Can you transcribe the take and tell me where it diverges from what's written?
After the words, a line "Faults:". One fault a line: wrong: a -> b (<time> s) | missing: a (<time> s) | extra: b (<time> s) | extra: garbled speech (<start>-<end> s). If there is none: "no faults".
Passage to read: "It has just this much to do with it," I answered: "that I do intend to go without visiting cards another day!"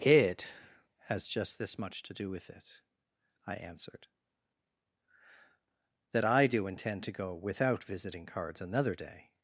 "It has just this much to do with it," I answered: "that I do intend to go without visiting cards another day!"
Faults:
no faults